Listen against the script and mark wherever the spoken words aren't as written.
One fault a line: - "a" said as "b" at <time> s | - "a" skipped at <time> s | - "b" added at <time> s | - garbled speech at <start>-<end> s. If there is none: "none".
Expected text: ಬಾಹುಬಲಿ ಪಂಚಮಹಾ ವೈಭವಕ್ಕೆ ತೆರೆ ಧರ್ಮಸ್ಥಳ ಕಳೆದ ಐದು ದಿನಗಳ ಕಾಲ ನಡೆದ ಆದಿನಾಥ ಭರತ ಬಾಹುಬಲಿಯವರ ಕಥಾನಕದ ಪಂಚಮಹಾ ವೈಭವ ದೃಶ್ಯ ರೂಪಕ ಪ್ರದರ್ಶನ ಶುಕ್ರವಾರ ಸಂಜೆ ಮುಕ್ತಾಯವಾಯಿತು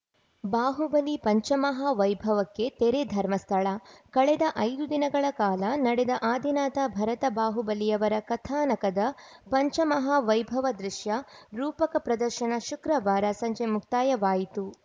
none